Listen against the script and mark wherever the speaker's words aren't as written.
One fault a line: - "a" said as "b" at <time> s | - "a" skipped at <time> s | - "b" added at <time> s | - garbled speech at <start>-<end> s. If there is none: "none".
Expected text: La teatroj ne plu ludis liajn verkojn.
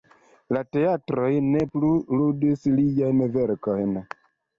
none